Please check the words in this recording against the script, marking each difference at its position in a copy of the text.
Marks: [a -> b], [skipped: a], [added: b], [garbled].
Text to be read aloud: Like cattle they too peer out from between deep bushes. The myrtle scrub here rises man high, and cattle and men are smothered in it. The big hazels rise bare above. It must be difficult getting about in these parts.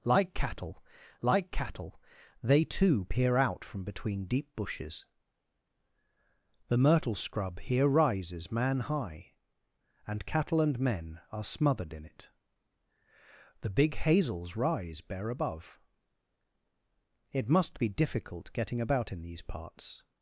Like cattle [added: like cattle] they too peer out from between deep bushes. The myrtle scrub here rises man high, and cattle and men are smothered in it. The big hazels rise bare above. It must be difficult getting about in these parts.